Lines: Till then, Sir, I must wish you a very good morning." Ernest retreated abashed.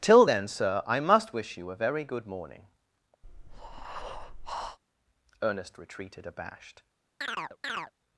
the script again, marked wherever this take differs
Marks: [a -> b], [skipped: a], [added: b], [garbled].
Till then, Sir, I must wish you a very good morning." Ernest retreated abashed.